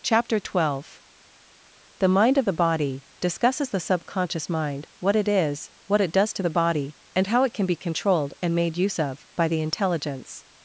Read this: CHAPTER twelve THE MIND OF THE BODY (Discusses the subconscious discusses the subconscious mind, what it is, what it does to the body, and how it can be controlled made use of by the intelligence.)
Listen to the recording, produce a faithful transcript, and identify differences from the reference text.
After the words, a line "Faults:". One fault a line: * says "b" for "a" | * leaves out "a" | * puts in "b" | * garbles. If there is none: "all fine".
CHAPTER twelve THE MIND OF THE BODY (Discusses the subconscious mind, what it is, what it does to the body, and how it can be controlled and made use of by the intelligence.)
Faults:
* leaves out "discusses the subconscious"
* puts in "and"